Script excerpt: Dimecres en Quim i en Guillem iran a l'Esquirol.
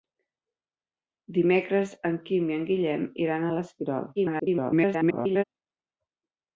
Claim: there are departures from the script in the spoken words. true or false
true